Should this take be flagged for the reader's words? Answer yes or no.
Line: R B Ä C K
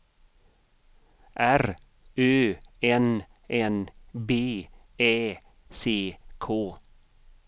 yes